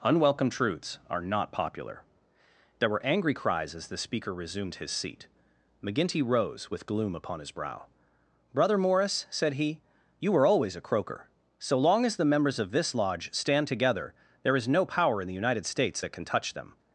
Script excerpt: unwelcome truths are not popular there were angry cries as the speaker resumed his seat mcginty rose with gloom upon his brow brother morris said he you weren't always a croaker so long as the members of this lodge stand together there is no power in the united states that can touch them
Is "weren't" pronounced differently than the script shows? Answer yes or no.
yes